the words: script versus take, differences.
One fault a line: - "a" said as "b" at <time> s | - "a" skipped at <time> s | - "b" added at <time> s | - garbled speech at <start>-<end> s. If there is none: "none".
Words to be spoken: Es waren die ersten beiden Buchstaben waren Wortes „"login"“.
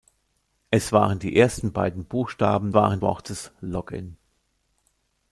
none